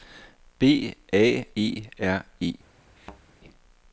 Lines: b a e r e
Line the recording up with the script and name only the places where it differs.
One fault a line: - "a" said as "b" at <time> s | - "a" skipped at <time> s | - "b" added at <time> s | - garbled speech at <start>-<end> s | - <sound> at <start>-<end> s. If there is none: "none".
- thud at 3.0-3.2 s